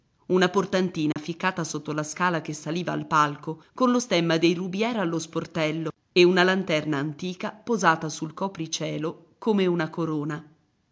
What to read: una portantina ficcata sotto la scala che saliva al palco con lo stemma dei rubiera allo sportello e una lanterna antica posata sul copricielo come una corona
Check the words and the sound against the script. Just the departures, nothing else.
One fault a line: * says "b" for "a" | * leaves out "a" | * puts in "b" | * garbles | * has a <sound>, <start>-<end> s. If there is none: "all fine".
* has a dropout, 1.1-1.2 s